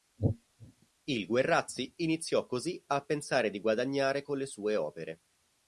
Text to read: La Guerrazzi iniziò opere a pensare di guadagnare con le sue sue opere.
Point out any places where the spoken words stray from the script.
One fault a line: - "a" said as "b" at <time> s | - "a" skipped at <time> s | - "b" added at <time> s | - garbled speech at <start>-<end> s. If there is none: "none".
- "La" said as "Il" at 1.0 s
- "opere" said as "così" at 2.5 s
- "sue" skipped at 4.8 s